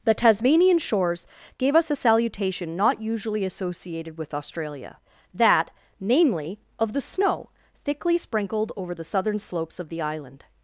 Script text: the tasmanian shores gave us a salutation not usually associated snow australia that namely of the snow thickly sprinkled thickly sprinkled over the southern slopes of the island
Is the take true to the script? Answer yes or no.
no